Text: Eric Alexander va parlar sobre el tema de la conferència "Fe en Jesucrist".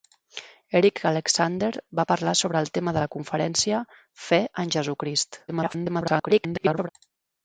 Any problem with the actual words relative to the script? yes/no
yes